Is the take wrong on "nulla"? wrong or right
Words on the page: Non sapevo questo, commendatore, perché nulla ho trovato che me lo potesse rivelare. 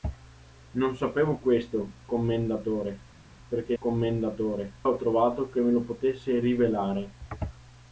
wrong